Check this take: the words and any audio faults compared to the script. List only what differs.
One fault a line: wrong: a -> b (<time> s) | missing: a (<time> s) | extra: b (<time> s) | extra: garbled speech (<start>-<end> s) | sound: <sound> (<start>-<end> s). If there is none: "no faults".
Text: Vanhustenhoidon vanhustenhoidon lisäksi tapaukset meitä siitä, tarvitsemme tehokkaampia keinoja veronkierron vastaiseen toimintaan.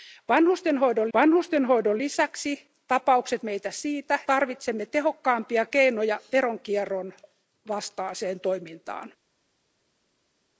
no faults